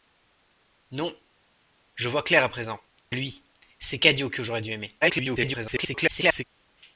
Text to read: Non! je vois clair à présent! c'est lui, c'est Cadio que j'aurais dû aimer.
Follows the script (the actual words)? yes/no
no